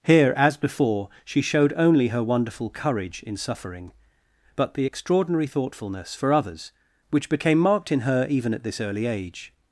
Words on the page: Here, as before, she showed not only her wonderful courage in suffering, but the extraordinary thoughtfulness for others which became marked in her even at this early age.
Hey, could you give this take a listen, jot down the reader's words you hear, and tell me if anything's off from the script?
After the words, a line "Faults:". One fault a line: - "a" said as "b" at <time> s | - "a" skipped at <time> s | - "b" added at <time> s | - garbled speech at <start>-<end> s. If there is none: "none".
Here, as before, she showed only her wonderful courage in suffering, but the extraordinary thoughtfulness for others which became marked in her even at this early age.
Faults:
- "not" skipped at 1.7 s